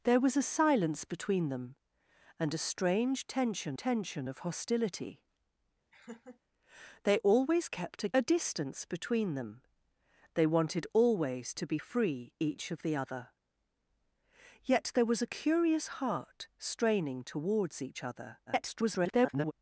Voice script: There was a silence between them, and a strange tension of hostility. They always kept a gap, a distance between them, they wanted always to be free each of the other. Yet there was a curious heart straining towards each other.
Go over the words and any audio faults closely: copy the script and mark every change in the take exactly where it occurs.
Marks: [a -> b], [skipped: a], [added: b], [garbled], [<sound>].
There was a silence between them, and a strange tension [added: tension] of hostility. [laugh] They always kept a [skipped: gap,] a distance between them, they wanted always to be free each of the other. Yet there was a curious heart straining towards each other. [garbled]